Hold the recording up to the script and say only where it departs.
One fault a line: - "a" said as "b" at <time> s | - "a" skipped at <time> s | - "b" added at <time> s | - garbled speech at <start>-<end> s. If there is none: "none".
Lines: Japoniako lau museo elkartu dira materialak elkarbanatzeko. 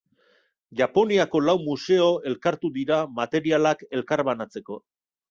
none